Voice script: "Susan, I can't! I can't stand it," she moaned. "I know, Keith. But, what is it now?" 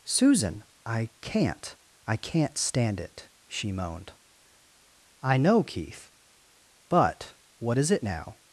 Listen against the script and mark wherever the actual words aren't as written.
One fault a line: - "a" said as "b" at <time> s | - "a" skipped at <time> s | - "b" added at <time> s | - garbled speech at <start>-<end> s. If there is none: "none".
none